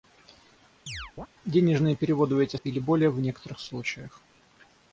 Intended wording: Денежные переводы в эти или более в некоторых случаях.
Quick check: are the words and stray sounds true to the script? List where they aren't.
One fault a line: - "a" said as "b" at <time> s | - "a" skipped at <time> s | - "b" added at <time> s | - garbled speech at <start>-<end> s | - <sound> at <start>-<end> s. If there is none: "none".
- chirp at 0.9-1.3 s